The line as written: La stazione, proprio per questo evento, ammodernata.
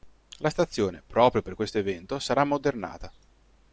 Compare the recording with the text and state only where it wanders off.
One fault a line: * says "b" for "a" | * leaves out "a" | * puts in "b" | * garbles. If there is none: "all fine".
* puts in "sarà"